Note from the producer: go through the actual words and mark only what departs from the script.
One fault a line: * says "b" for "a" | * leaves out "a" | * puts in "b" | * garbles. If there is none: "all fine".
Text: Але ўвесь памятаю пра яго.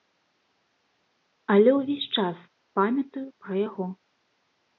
* puts in "час"